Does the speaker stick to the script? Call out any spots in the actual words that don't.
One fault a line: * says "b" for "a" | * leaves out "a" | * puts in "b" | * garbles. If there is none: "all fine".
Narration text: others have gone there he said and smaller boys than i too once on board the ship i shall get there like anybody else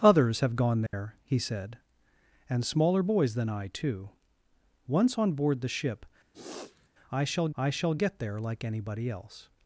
* puts in "i shall"